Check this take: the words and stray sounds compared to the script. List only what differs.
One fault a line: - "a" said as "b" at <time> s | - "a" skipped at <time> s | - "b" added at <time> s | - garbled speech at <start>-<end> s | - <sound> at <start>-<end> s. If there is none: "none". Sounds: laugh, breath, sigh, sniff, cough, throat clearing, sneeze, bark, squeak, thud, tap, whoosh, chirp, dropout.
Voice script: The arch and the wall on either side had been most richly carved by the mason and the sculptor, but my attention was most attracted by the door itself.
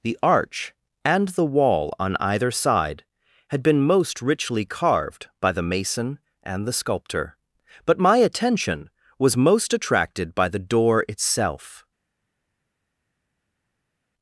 none